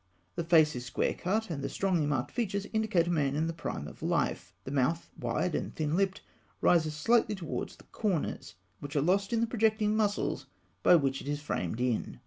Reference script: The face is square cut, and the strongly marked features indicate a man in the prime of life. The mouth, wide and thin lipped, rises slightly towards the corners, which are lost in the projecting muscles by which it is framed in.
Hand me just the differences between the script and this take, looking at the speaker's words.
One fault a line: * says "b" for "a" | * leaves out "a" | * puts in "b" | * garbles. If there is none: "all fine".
all fine